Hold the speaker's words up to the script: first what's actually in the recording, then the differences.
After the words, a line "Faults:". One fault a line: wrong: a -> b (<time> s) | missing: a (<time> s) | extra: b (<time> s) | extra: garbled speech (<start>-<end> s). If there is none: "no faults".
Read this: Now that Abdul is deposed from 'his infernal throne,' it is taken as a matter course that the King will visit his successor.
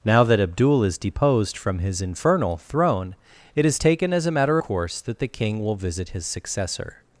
Now that Abdul is deposed from 'his infernal throne,' it is taken as a matter course that the King will visit his successor.
Faults:
no faults